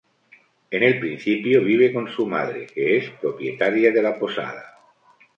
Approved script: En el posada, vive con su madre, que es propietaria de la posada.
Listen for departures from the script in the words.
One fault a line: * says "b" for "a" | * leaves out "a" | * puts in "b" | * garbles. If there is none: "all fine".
* says "principio" for "posada"